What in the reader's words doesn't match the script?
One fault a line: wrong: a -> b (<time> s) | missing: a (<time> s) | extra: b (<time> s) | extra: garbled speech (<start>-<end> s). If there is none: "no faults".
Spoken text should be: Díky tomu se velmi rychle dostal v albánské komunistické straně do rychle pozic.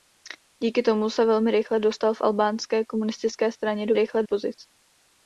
no faults